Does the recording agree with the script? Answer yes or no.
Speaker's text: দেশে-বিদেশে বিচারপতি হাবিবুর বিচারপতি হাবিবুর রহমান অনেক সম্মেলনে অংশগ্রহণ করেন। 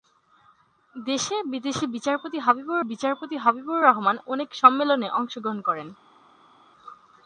yes